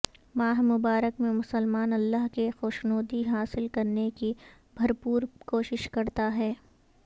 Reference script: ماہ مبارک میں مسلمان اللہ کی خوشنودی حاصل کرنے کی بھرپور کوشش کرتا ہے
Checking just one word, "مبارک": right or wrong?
right